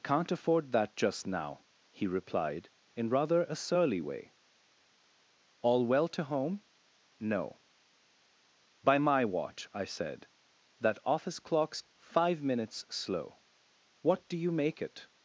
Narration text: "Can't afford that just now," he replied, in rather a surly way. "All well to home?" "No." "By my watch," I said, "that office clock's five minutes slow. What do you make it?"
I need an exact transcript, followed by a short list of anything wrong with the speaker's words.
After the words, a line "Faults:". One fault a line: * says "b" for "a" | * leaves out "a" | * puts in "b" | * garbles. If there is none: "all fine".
"Can't afford that just now," he replied, in rather a surly way. "All well to home?" "No." "By my watch," I said, "that office clock's five minutes slow. What do you make it?"
Faults:
all fine